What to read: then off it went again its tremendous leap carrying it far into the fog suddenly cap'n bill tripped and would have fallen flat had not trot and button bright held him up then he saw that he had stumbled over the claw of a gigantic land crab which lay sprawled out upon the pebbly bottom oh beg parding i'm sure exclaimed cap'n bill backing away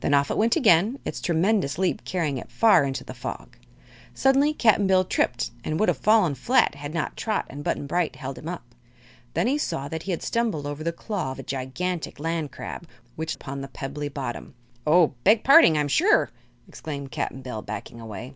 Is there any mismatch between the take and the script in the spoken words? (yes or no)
yes